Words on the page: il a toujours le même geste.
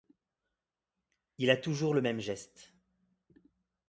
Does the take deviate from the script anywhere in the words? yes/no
no